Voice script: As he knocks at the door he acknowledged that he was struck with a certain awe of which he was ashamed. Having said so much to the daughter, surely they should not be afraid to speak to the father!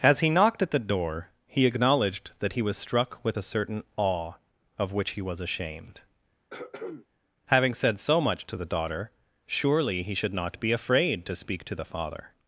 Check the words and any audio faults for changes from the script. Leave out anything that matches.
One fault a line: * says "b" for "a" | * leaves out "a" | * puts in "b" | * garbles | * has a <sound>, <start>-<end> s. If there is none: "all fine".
* says "knocked" for "knocks"
* has a throat clearing, 6.5-7.1 s
* says "he" for "they"